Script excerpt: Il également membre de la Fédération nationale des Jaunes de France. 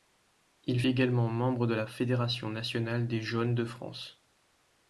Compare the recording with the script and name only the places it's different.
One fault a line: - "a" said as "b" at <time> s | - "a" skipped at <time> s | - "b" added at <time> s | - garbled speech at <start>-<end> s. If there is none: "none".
none